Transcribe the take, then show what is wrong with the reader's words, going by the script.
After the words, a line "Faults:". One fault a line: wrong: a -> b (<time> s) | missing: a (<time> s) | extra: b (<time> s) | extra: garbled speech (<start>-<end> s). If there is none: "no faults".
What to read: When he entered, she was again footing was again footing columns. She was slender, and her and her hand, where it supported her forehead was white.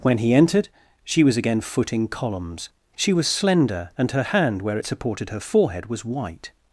When he entered, she was again footing columns. She was slender, and her hand, where it supported her forehead was white.
Faults:
missing: was again footing (2.1 s)
missing: and her (4.2 s)